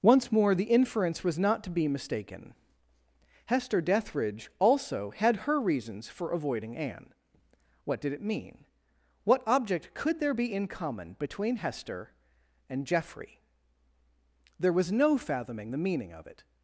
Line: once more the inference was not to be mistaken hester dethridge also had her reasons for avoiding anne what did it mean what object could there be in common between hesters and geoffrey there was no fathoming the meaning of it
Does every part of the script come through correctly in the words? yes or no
no